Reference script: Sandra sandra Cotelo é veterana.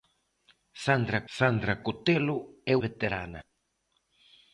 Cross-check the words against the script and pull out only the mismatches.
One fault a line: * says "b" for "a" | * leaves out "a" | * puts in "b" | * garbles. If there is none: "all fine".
all fine